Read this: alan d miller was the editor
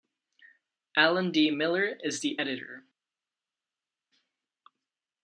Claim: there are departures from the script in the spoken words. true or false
true